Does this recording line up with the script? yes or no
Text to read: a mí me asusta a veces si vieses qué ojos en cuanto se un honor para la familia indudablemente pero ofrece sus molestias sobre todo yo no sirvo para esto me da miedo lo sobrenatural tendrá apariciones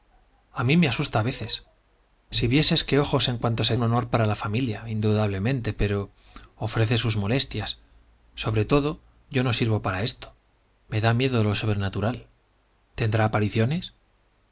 yes